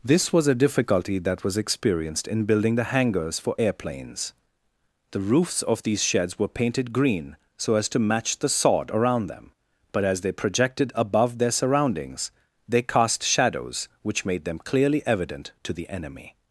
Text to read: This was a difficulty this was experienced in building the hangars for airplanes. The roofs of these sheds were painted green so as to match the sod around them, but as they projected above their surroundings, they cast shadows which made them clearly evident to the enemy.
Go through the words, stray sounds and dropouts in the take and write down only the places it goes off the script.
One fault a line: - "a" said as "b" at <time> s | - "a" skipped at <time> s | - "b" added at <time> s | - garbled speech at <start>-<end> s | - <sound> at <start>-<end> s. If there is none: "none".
- "this" said as "that" at 1.2 s